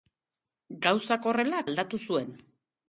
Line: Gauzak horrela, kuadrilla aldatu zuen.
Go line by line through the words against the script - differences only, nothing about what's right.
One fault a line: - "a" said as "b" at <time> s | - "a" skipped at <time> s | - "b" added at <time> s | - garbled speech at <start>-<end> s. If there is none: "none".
- "kuadrilla" skipped at 1.6 s